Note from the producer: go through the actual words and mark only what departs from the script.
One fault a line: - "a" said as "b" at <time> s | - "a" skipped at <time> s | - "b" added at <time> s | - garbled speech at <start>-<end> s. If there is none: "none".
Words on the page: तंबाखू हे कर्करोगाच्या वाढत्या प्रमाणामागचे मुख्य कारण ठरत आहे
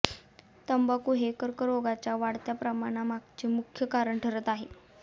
none